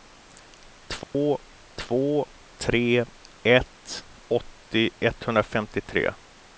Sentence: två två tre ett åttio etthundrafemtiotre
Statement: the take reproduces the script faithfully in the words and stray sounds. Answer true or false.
false